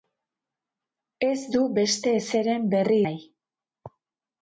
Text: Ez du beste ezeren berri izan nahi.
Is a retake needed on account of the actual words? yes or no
yes